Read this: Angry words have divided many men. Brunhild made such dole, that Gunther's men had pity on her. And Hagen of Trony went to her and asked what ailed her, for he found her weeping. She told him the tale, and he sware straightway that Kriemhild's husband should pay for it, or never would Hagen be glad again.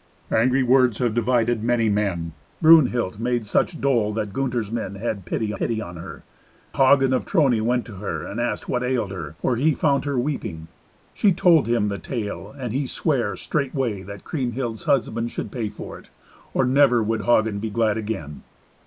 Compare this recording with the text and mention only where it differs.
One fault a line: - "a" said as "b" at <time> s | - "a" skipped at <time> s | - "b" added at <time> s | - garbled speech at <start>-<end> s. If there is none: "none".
- "pity" added at 5.6 s
- "And" skipped at 6.3 s